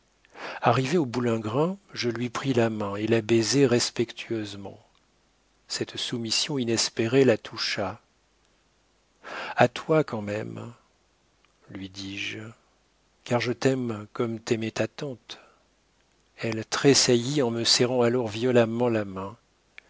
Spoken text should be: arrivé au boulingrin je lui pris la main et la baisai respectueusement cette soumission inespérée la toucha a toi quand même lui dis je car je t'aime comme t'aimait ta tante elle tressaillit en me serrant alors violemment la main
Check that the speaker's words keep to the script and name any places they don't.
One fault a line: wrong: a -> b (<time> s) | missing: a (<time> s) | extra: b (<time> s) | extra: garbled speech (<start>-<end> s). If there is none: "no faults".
no faults